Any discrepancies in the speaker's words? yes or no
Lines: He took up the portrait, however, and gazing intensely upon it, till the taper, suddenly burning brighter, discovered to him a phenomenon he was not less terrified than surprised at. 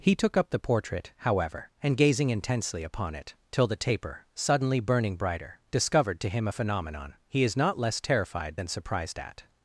yes